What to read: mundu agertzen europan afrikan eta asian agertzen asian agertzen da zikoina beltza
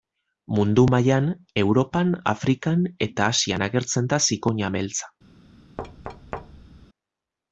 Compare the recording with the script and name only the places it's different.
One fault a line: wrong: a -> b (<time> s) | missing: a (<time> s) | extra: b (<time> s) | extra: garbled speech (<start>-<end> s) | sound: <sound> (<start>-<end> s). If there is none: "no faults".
wrong: agertzen -> mailan (0.9 s)
missing: asian agertzen (4.1 s)
sound: thud (5.8-6.9 s)